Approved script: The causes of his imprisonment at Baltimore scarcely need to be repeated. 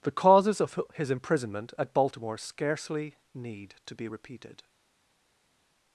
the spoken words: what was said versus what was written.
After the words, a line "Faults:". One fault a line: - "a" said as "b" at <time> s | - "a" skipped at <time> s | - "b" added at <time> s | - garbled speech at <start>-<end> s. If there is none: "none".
The causes of his imprisonment at Baltimore scarcely need to be repeated.
Faults:
none